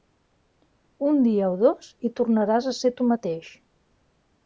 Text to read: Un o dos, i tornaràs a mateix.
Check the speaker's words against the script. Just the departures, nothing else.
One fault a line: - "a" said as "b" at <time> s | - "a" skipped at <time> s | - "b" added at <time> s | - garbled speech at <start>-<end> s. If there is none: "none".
- "dia" added at 1.3 s
- "ser tu" added at 2.8 s